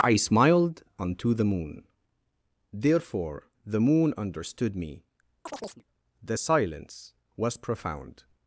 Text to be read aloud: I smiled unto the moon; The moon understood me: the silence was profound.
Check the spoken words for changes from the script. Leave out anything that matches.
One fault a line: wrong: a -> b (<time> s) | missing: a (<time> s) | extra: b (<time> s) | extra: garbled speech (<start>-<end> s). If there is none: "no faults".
extra: therefore (2.7 s)